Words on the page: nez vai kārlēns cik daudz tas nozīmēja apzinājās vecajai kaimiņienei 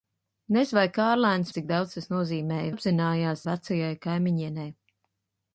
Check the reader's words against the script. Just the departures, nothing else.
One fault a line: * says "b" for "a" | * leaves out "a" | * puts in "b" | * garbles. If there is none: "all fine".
all fine